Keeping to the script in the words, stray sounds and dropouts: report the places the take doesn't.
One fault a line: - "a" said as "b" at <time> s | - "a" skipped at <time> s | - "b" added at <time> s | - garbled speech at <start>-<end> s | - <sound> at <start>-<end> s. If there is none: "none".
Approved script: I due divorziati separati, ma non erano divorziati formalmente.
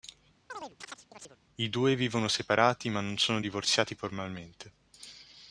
- chirp at 0.5-1.4 s
- "divorziati" said as "vivono" at 2.0 s
- "erano" said as "sono" at 3.2 s